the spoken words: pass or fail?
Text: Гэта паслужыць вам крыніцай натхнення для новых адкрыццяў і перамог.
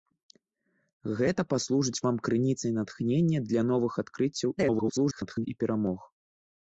fail